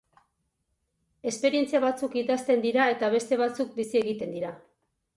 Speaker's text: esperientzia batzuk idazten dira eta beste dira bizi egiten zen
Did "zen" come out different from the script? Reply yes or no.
yes